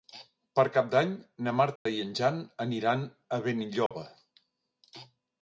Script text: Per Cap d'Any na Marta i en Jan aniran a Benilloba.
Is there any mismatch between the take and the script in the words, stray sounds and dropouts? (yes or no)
yes